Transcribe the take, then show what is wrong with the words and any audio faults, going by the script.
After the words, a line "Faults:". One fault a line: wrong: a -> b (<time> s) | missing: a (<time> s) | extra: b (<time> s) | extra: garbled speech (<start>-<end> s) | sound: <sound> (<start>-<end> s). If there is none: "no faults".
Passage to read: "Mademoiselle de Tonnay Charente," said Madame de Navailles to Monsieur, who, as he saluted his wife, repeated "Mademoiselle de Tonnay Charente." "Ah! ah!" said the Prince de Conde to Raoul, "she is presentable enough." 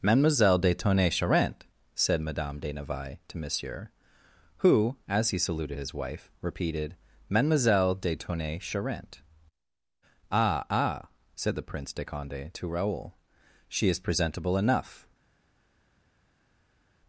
"Mademoiselle de Tonnay Charente," said Madame de Navailles to Monsieur, who, as he saluted his wife, repeated "Mademoiselle de Tonnay Charente." "Ah! ah!" said the Prince de Conde to Raoul, "she is presentable enough."
Faults:
no faults